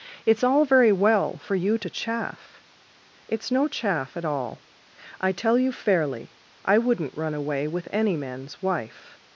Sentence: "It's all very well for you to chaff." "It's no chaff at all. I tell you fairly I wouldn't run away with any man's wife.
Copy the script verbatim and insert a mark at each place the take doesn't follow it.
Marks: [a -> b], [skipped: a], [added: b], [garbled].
"It's all very well for you to chaff." "It's no chaff at all. I tell you fairly I wouldn't run away with any man's wife.